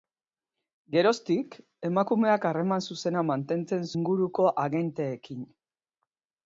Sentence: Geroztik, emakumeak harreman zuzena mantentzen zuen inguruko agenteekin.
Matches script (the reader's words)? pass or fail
fail